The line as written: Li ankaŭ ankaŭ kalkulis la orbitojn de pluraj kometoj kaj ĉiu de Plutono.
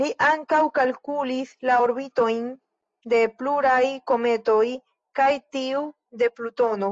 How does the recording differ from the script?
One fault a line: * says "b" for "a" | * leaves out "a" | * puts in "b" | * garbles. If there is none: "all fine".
* leaves out "ankaŭ"
* says "tiu" for "ĉiu"